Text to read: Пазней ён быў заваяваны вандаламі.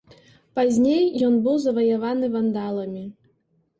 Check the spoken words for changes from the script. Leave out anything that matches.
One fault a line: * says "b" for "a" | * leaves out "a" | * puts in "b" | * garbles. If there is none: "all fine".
all fine